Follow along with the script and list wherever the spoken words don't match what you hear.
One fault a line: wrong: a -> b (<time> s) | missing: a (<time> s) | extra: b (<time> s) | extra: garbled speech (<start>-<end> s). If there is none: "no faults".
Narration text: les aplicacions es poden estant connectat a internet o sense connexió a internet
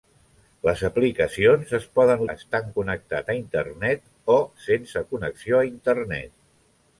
no faults